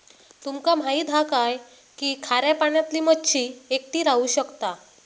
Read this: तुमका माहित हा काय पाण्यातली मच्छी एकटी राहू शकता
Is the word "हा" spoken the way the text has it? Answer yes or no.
yes